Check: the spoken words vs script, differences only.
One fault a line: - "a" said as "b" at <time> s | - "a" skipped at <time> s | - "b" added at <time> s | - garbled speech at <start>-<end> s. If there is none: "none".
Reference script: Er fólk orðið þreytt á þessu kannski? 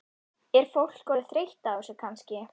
none